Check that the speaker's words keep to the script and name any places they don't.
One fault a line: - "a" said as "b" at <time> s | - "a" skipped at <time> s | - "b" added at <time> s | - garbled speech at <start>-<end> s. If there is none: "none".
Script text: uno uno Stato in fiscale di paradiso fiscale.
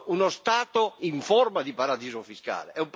- "uno" skipped at 0.3 s
- "fiscale" said as "forma" at 1.2 s